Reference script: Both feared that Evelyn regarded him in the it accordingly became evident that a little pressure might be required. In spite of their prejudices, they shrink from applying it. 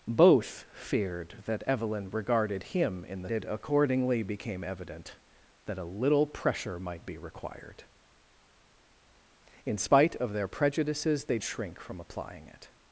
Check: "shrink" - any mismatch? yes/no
no